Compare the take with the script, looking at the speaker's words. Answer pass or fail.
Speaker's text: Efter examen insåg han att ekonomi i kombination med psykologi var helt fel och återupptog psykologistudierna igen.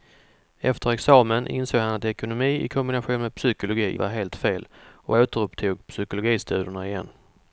pass